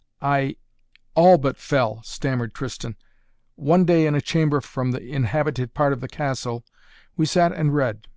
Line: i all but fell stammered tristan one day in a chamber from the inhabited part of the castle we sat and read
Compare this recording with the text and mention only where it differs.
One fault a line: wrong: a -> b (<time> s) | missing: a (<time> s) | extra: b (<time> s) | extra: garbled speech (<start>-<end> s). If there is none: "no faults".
no faults